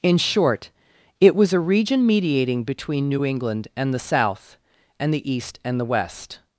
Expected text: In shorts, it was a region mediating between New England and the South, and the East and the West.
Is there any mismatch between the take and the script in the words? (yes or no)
yes